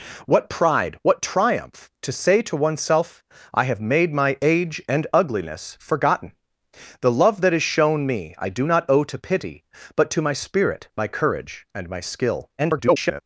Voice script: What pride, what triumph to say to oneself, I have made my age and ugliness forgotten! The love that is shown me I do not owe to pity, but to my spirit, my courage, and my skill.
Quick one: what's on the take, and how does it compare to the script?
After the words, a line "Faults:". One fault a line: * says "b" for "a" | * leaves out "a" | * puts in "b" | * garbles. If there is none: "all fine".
What pride, what triumph to say to oneself, I have made my age and ugliness forgotten! The love that is shown me I do not owe to pity, but to my spirit, my courage, and my skill. [garbled]
Faults:
* garbles